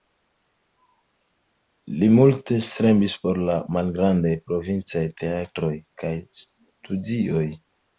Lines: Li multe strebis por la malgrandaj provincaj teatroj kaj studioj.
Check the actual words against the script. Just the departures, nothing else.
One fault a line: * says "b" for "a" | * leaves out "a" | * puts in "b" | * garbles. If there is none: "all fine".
all fine